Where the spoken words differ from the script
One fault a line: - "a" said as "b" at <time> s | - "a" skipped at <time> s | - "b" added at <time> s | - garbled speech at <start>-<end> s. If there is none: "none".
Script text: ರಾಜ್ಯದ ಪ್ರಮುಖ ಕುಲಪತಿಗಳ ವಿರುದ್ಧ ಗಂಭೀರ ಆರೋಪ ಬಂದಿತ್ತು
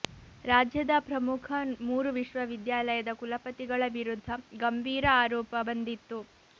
- "ಮೂರು ವಿಶ್ವವಿದ್ಯಾಲಯದ" added at 1.8 s